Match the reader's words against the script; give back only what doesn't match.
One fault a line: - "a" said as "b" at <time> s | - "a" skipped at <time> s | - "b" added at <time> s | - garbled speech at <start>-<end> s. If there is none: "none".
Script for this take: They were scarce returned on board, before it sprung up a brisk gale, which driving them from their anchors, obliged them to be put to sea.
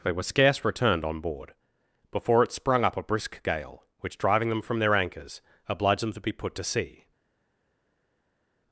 none